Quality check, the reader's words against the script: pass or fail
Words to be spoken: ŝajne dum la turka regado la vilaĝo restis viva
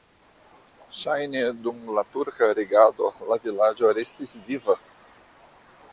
pass